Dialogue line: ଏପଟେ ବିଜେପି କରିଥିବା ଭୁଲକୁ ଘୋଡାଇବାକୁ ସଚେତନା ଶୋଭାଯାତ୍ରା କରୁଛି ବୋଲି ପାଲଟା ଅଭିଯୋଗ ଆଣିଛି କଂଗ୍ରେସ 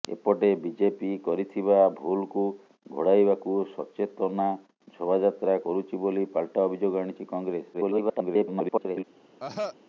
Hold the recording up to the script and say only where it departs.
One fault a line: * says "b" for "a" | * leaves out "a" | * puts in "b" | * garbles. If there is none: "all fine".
* garbles